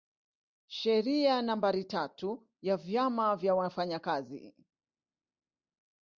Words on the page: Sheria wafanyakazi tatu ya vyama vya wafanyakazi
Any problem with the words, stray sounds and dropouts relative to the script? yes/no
yes